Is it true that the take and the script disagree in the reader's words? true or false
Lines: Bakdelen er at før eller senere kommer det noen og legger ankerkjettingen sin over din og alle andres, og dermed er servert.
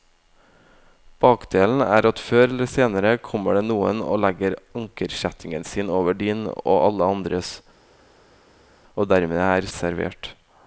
false